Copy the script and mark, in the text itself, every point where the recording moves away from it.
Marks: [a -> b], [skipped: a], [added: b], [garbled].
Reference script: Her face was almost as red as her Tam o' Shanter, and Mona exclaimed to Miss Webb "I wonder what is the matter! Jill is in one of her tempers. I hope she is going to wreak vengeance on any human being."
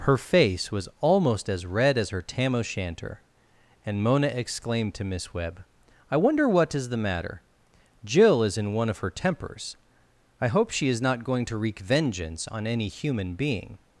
Her face was almost as red as her Tam o' Shanter, and Mona exclaimed to Miss Webb "I wonder what is the matter! Jill is in one of her tempers. I hope she is [added: not] going to wreak vengeance on any human being."